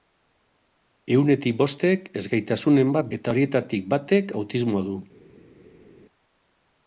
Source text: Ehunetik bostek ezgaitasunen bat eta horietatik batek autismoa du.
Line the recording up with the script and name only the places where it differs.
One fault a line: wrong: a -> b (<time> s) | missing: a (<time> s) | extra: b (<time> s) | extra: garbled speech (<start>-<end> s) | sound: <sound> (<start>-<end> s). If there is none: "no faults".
no faults